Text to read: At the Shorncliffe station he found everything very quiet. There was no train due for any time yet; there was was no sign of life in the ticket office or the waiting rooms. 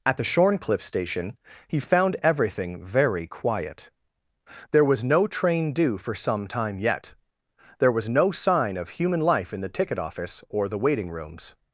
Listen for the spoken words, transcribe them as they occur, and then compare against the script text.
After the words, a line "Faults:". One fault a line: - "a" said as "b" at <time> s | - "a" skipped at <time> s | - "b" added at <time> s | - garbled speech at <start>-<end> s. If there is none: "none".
At the Shorncliffe station he found everything very quiet. There was no train due for some time yet; there was no sign of human life in the ticket office or the waiting rooms.
Faults:
- "any" said as "some" at 6.2 s
- "was" skipped at 8.1 s
- "human" added at 9.0 s